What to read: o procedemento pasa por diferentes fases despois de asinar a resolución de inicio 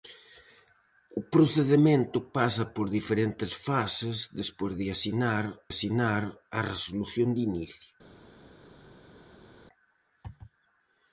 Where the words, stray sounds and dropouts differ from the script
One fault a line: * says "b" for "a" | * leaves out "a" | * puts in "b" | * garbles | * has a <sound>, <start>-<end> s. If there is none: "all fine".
* puts in "asinar"